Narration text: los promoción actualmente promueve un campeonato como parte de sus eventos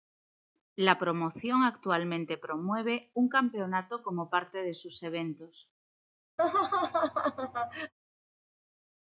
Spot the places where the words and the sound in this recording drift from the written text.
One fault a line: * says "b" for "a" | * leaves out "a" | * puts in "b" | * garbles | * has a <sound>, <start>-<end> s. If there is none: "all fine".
* says "la" for "los"
* has a laugh, 6.4-7.9 s